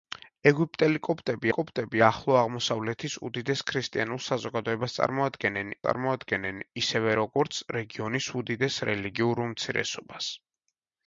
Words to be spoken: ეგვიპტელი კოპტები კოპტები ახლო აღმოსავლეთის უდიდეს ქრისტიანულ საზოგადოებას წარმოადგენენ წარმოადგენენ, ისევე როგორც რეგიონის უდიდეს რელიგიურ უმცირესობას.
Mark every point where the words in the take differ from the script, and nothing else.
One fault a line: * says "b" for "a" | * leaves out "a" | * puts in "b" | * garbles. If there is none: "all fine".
all fine